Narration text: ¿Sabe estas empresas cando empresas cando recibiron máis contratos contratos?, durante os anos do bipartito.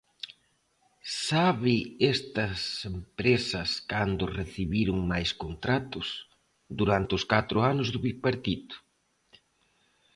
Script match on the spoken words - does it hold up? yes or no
no